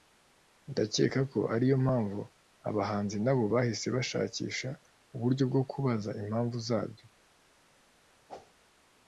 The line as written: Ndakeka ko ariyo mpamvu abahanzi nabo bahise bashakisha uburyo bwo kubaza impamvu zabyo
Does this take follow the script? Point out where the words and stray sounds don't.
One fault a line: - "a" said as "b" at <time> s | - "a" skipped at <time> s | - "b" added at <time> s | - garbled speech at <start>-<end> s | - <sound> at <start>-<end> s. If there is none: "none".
- whoosh at 8.3-8.5 s